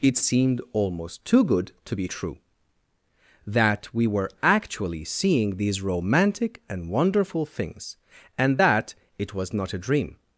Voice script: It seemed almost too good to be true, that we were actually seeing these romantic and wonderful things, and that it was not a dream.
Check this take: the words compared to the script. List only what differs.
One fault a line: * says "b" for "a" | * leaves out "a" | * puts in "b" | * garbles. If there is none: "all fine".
all fine